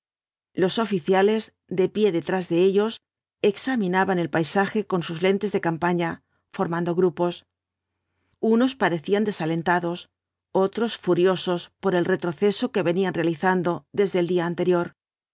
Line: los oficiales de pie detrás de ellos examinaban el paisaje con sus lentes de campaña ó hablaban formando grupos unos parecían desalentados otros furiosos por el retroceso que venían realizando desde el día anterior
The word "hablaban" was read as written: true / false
false